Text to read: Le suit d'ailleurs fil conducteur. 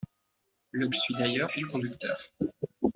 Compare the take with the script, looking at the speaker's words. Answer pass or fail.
pass